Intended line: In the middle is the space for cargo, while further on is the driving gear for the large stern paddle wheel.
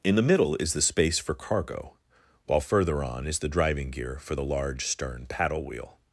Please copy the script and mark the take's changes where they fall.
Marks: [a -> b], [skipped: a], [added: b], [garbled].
In the middle is the space for cargo, while further on is the driving gear for the large stern paddle wheel.